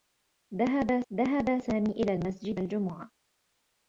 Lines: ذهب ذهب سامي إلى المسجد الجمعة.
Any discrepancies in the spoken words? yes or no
no